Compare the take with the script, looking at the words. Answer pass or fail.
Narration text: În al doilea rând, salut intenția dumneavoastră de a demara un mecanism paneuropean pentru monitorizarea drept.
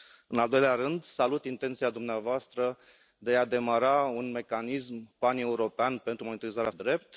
pass